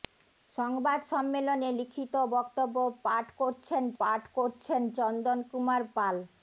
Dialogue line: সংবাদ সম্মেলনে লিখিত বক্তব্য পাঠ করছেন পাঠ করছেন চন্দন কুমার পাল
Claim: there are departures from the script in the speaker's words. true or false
false